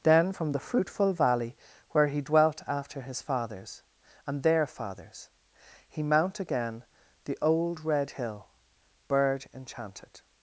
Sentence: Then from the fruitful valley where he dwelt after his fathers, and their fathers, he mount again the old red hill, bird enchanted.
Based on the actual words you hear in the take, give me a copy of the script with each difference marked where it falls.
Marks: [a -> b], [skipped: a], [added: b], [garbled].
Then from the fruitful valley where he dwelt after his fathers, and their fathers, he mount again the old red hill, bird enchanted.